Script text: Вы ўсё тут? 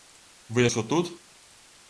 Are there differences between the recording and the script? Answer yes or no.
no